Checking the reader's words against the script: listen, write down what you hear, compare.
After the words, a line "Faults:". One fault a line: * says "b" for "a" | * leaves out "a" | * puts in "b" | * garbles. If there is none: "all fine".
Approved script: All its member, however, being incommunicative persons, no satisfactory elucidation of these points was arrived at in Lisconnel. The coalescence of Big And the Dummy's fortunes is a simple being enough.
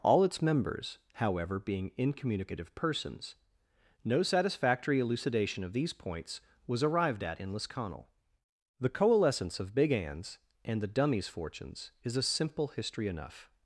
All its members, however, being incommunicative persons, no satisfactory elucidation of these points was arrived at in Lisconnel. The coalescence of Big Anne's and the Dummy's fortunes is a simple history enough.
Faults:
* says "members" for "member"
* puts in "Anne's"
* says "history" for "being"